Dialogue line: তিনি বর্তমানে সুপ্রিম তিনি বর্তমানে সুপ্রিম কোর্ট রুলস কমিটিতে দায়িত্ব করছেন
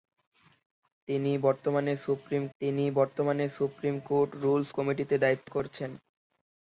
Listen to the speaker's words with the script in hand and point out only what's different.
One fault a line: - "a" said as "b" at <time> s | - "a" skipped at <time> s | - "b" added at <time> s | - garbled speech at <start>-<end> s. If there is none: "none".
none